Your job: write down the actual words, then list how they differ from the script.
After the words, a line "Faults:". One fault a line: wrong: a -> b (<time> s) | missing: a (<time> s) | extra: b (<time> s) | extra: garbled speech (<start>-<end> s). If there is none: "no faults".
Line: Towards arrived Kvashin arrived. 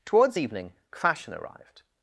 Towards evening Kvashin arrived.
Faults:
wrong: arrived -> evening (0.4 s)